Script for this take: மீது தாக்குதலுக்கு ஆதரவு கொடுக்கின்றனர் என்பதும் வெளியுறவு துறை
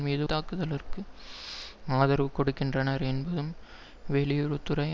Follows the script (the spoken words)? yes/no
yes